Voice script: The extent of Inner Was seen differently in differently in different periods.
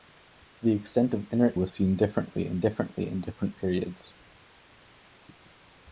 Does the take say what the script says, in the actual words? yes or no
yes